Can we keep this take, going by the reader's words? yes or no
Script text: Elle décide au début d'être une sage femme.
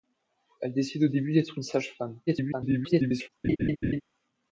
no